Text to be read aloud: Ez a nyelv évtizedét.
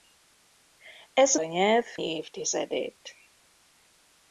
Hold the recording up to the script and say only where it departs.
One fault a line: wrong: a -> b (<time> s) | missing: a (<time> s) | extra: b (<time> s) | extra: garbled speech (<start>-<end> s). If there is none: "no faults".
no faults